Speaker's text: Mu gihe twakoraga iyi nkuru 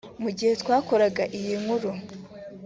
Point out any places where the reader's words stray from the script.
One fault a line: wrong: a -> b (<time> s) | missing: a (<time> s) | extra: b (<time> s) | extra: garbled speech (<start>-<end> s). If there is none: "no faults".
no faults